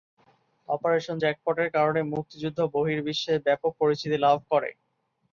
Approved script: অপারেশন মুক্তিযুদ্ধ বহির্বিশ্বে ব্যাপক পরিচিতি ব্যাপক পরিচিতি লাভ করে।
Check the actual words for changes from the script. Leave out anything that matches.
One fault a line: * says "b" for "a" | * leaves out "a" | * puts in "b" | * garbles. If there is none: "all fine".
* puts in "জ্যাকপটের কারণে"
* leaves out "ব্যাপক পরিচিতি"